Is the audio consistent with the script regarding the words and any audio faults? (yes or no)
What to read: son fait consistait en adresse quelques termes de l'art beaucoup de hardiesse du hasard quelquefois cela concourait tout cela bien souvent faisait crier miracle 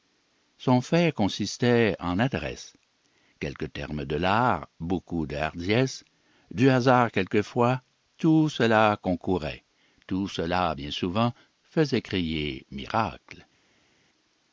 no